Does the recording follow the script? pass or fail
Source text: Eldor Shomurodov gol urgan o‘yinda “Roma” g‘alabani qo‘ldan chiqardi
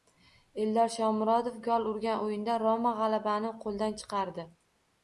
pass